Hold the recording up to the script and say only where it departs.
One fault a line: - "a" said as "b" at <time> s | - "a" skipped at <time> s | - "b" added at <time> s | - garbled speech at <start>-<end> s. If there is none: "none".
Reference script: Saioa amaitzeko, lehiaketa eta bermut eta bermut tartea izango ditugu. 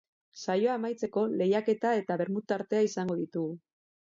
- "eta bermut" skipped at 2.5 s